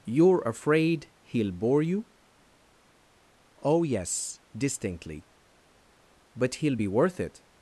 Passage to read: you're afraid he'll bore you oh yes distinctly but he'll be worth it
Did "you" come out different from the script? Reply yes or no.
no